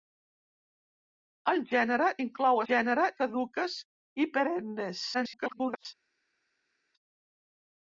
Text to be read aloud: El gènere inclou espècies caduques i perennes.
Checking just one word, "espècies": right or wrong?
wrong